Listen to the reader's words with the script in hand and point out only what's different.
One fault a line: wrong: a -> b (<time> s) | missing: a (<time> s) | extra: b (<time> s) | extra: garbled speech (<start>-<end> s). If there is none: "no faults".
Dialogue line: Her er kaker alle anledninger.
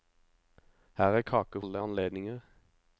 no faults